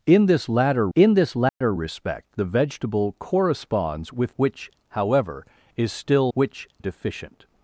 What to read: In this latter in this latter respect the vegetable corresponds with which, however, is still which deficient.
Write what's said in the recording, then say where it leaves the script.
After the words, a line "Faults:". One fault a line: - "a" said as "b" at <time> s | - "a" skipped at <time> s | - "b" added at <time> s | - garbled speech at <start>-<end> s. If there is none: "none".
In this latter in this latter respect the vegetable corresponds with which, however, is still which deficient.
Faults:
none